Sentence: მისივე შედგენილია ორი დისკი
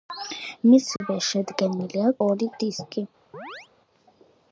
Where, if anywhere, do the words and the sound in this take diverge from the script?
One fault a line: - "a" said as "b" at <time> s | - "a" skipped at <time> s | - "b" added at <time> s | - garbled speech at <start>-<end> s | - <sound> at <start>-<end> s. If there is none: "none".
- dropout at 1.0-1.0 s
- chirp at 3.3-3.7 s